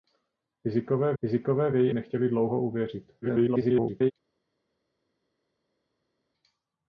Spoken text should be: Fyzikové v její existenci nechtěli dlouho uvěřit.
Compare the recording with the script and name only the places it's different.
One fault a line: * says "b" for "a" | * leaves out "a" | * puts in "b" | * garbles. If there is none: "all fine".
* puts in "fyzikové"
* leaves out "existenci"
* garbles